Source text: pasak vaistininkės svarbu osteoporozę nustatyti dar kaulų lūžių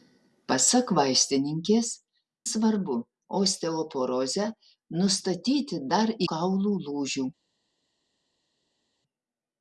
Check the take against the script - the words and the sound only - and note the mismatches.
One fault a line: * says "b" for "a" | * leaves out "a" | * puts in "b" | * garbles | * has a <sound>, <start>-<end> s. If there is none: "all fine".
all fine